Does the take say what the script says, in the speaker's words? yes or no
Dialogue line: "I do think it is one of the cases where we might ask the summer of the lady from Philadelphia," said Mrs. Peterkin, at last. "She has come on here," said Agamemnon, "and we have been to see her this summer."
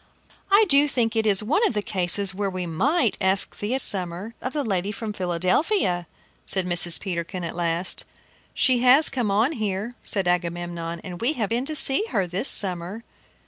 yes